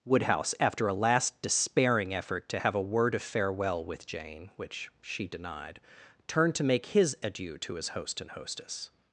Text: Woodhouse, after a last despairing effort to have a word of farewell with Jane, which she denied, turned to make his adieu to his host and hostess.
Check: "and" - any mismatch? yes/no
no